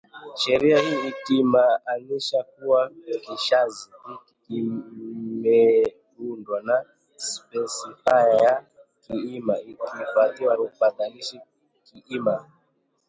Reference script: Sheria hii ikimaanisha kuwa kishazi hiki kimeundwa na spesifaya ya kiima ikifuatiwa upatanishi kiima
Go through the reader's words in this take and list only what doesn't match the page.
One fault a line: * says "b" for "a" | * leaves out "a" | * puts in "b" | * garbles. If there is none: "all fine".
all fine